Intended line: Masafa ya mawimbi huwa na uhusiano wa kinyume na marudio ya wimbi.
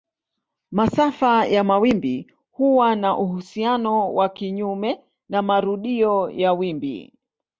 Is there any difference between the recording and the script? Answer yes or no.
no